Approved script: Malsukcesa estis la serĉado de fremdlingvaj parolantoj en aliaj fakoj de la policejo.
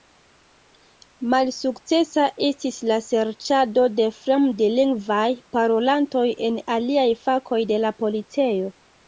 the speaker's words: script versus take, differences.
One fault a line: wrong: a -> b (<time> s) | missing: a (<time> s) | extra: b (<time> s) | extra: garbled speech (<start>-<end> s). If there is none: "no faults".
no faults